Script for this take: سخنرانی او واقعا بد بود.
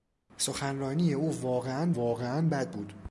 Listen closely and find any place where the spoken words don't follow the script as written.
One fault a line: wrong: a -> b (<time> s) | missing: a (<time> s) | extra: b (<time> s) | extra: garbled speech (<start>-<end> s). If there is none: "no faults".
extra: واقعا (1.9 s)